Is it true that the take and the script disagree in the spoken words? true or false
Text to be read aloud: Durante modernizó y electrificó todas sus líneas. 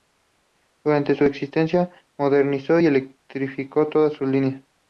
true